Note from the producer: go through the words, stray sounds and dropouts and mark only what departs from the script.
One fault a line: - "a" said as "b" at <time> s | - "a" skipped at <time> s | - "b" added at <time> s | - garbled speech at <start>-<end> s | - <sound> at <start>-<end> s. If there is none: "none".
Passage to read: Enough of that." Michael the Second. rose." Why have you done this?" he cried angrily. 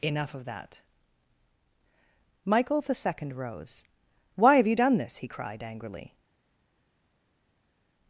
none